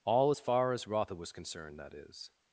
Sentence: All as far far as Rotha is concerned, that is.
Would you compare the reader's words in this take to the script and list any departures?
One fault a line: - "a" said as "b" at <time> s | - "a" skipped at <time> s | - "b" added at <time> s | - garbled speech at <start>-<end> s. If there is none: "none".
- "far" skipped at 0.7 s
- "is" said as "was" at 1.1 s